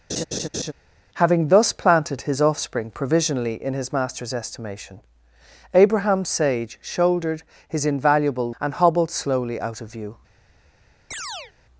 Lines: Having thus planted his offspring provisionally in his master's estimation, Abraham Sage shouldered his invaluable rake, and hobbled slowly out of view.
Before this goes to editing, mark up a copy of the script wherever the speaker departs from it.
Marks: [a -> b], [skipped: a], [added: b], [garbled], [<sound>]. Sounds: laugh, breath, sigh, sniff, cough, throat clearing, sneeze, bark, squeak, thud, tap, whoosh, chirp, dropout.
[laugh] Having thus planted his offspring provisionally in his master's estimation, Abraham Sage shouldered his invaluable [skipped: rake,] and hobbled slowly out of view. [chirp]